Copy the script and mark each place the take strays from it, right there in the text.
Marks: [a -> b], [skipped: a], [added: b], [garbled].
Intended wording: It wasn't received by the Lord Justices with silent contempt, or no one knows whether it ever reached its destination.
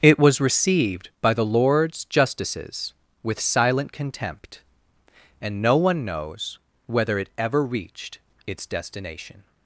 It [wasn't -> was] received by the [Lord -> Lords] Justices with silent contempt, [or -> and] no one knows whether it ever reached its destination.